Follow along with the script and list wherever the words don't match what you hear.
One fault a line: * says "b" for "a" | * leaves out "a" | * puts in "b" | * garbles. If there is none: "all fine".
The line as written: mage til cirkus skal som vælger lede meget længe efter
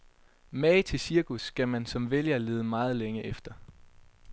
* puts in "man"